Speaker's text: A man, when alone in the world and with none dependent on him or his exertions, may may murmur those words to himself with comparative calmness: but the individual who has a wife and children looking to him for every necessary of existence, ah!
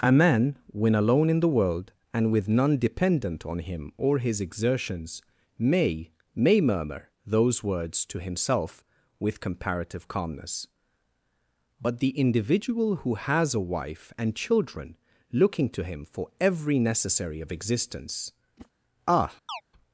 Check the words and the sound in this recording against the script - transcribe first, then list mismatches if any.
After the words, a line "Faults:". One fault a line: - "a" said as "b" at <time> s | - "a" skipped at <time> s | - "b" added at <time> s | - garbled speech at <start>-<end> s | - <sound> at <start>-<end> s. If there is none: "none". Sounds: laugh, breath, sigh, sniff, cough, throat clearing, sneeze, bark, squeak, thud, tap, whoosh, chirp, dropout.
A man, when alone in the world and with none dependent on him or his exertions, may may murmur those words to himself with comparative calmness: but the individual who has a wife and children looking to him for every necessary of existence, ah!
Faults:
- whoosh at 18.6-18.7 s
- chirp at 19.5-19.6 s